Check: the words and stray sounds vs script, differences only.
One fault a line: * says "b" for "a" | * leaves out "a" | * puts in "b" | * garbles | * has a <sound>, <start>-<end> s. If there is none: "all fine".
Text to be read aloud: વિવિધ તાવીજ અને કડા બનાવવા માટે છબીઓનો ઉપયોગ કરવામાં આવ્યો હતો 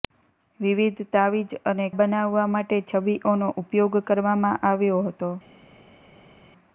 * leaves out "કડા"